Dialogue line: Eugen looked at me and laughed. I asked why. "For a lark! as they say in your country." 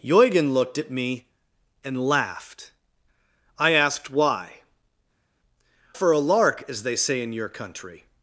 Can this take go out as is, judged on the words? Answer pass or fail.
pass